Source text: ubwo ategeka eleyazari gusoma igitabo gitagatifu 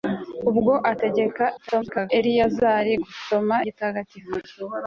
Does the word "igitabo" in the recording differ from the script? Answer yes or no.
yes